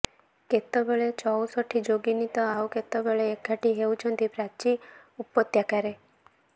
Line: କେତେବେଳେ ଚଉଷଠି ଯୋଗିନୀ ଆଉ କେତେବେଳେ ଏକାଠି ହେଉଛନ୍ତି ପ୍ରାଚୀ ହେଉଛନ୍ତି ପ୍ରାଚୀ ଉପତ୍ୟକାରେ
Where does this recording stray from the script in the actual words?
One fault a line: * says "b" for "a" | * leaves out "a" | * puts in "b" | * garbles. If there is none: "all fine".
* puts in "ତ"
* leaves out "ହେଉଛନ୍ତି ପ୍ରାଚୀ"